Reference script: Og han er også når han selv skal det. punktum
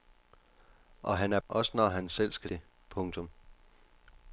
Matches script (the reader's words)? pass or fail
pass